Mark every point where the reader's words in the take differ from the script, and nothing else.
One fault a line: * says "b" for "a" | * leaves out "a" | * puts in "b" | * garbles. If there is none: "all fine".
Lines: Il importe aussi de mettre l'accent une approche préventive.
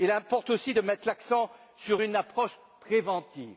* puts in "sur"